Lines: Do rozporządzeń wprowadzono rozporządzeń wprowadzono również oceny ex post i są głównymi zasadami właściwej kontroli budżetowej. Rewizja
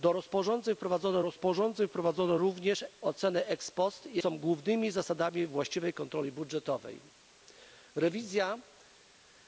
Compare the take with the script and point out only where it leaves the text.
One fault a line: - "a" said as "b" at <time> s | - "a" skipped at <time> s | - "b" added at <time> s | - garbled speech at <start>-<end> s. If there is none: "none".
none